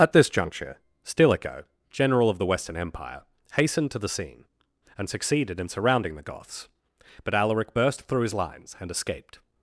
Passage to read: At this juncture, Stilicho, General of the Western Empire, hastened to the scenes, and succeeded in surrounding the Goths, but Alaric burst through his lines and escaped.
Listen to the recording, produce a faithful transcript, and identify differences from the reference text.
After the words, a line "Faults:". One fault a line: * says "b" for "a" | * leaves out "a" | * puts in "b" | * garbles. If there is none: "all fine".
At this juncture, Stilicho, General of the Western Empire, hastened to the scene, and succeeded in surrounding the Goths, but Alaric burst through his lines and escaped.
Faults:
* says "scene" for "scenes"